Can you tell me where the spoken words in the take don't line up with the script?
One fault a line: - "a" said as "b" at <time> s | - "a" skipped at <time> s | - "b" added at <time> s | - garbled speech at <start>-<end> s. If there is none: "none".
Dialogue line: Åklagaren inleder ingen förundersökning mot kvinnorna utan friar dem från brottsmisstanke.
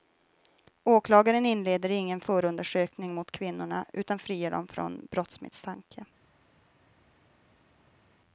none